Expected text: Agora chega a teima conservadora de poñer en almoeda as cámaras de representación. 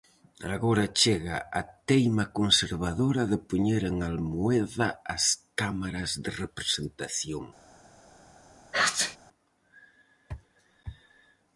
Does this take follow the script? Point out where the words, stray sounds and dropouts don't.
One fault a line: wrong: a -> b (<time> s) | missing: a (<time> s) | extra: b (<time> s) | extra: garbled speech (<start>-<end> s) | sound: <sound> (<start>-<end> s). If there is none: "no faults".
sound: sneeze (8.7-9.2 s)